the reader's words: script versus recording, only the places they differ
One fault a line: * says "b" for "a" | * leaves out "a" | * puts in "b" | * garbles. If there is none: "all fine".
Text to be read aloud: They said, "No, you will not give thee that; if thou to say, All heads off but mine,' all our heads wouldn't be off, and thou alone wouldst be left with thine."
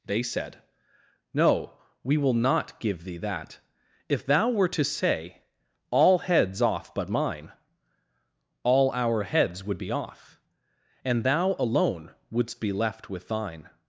* says "we" for "you"
* puts in "were"
* says "would" for "wouldn't"